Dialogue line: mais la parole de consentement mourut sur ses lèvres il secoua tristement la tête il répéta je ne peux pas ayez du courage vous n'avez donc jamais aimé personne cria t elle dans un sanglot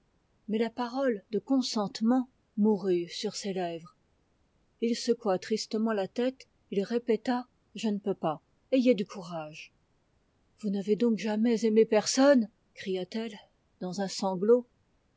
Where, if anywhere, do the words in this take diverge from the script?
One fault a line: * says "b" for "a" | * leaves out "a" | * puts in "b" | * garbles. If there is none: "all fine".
all fine